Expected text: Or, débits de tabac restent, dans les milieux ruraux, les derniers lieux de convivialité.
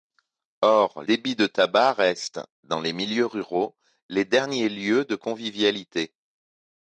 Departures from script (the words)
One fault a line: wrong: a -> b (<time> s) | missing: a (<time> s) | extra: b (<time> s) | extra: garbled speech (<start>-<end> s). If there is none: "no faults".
no faults